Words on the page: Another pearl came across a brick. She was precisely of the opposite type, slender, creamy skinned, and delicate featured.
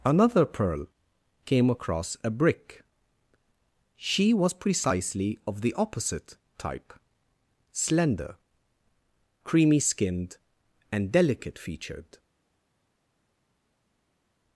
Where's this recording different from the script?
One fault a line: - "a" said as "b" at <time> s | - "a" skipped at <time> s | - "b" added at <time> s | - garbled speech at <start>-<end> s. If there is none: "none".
none